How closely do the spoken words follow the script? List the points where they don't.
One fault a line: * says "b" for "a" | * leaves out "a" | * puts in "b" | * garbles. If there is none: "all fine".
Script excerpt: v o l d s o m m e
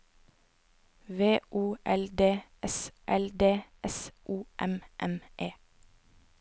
* puts in "l d s"